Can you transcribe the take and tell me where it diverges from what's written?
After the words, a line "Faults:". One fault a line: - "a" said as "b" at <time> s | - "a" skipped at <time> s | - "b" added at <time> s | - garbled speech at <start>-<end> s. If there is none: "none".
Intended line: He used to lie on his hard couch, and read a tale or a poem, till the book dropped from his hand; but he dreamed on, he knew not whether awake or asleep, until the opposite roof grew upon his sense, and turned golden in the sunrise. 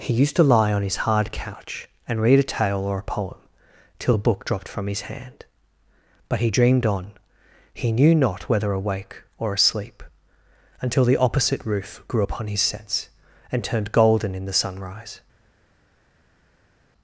He used to lie on his hard couch, and read a tale or a poem, till the book dropped from his hand; but he dreamed on, he knew not whether awake or asleep, until the opposite roof grew upon his sense, and turned golden in the sunrise.
Faults:
none